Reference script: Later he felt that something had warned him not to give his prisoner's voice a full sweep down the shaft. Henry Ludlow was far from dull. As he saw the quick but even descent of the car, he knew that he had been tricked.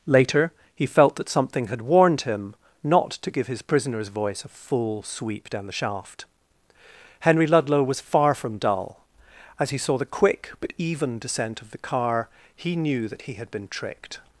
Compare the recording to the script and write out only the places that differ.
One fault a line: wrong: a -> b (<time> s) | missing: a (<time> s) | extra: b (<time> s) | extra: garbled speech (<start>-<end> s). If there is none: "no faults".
no faults